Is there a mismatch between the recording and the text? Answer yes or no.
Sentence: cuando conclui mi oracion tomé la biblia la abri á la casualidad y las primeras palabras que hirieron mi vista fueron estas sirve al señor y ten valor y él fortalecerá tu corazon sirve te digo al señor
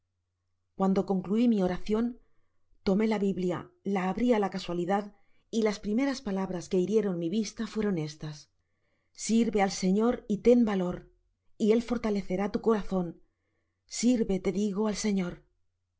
no